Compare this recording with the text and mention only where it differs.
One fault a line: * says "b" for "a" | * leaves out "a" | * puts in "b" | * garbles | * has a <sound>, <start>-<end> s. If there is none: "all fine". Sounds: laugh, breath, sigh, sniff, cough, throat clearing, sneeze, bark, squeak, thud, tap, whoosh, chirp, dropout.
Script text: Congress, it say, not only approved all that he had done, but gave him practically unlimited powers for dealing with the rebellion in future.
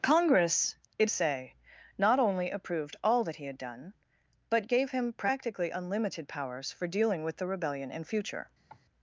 * has a cough, 8.7-8.8 s